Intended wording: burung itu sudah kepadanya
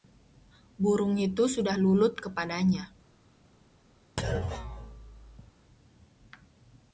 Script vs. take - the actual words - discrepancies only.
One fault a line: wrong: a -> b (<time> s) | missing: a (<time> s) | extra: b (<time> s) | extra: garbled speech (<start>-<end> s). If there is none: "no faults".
extra: lulut (1.7 s)